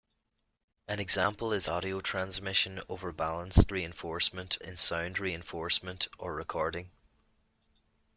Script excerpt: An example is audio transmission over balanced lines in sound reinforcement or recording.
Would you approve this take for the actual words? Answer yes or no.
no